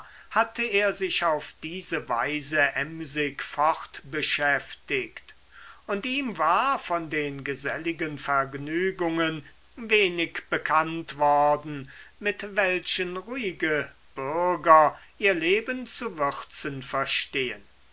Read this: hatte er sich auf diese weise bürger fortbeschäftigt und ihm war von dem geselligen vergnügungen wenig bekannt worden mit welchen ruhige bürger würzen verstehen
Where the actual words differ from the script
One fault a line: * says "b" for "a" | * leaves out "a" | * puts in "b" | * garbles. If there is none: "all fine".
* says "emsig" for "bürger"
* says "den" for "dem"
* puts in "ihr leben zu"